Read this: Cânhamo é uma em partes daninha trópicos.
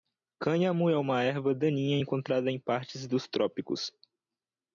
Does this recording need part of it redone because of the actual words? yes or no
yes